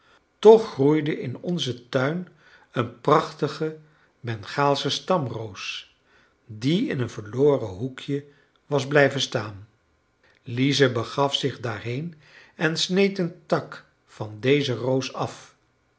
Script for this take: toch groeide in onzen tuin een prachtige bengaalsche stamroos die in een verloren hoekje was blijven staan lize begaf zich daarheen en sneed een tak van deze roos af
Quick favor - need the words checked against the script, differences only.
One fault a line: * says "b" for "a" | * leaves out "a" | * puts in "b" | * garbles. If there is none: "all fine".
all fine